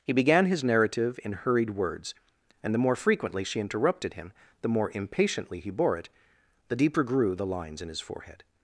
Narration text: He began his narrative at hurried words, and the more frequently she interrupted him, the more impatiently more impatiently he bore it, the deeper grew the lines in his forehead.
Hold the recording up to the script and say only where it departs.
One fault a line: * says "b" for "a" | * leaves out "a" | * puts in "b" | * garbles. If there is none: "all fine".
* says "in" for "at"
* leaves out "more impatiently"